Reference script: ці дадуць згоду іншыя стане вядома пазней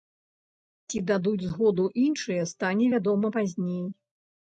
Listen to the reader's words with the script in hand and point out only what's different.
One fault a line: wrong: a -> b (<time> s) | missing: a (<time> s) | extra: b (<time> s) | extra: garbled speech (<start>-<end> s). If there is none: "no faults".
no faults